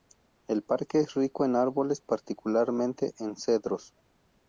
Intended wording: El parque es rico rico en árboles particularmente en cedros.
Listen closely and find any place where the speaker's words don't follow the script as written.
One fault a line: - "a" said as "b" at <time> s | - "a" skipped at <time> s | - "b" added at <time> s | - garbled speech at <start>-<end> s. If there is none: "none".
- "rico" skipped at 1.4 s